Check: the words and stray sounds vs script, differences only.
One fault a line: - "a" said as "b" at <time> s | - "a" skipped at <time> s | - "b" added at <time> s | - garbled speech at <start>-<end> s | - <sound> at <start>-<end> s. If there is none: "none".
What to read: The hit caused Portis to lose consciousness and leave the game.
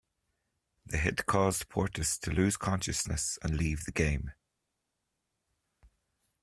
none